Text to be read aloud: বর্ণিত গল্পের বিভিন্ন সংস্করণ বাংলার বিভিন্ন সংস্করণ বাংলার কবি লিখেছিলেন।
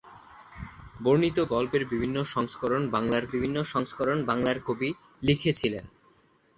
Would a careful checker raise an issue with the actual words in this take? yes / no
no